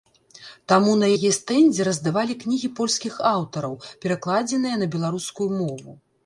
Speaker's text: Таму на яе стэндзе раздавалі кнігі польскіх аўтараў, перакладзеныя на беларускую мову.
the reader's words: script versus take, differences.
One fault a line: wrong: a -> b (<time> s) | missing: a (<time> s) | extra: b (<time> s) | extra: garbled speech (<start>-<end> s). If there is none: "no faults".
no faults